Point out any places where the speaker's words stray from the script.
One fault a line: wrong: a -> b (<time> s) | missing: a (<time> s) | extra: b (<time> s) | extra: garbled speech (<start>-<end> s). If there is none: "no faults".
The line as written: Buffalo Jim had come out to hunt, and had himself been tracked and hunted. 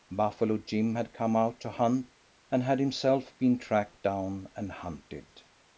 extra: down (4.0 s)